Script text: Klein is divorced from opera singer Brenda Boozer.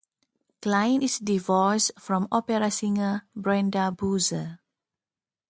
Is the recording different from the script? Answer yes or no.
no